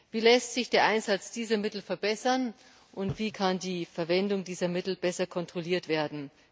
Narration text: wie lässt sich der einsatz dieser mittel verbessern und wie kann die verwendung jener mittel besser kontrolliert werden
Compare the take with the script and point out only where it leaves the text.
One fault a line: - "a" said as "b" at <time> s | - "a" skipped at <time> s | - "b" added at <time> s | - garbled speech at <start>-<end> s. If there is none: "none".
- "jener" said as "dieser" at 4.4 s